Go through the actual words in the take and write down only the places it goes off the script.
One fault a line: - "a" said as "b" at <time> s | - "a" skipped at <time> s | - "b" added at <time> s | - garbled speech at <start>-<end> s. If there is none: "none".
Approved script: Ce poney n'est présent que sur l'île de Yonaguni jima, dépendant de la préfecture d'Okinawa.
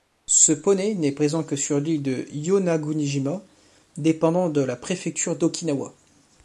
none